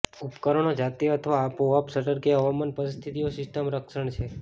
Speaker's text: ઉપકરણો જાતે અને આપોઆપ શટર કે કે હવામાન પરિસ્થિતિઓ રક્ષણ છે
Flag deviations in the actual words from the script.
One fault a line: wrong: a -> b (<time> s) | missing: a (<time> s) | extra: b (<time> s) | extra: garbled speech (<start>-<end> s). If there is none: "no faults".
wrong: અને -> અથવા (1.1 s)
missing: કે (2.4 s)
extra: સિસ્ટમ (3.4 s)